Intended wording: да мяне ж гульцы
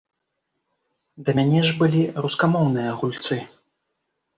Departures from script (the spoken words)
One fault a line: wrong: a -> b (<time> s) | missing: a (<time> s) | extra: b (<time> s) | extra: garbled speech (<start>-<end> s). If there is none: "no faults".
extra: былі рускамоўныя (1.8 s)